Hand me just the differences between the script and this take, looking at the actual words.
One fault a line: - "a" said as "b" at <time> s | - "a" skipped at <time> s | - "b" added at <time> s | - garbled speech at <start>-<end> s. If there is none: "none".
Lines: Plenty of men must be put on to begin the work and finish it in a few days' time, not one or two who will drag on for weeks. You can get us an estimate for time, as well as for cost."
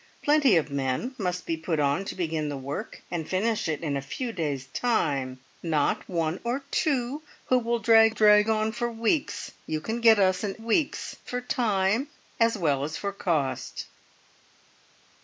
- "drag" added at 8.1 s
- "estimate" said as "weeks" at 10.6 s